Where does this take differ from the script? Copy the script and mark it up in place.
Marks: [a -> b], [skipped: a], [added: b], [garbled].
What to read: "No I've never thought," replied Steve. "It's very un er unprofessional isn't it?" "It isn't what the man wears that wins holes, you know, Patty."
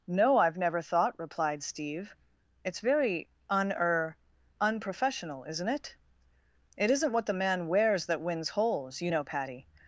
"No I've never thought," replied Steve. "It's very un er unprofessional isn't it?" "It isn't what the man wears that wins holes, you know, Patty."